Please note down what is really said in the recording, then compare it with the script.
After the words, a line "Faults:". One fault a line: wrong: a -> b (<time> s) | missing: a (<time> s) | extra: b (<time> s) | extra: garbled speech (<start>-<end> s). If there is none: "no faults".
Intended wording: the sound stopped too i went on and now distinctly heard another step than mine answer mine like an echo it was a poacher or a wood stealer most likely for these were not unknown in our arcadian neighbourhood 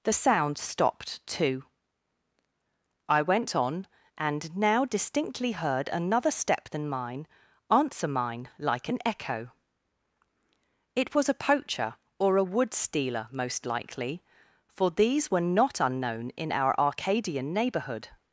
the sound stopped too i went on and now distinctly heard another step than mine answer mine like an echo it was a poacher or a wood stealer most likely for these were not unknown in our arcadian neighbourhood
Faults:
no faults